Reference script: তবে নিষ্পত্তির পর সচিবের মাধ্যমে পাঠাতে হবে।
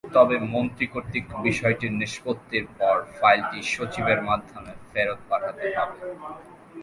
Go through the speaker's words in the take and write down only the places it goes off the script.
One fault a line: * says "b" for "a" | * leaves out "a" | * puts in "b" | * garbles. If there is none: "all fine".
* puts in "মন্ত্রী কর্তৃক বিষয়টির"
* puts in "ফাইলটি"
* puts in "ফেরত"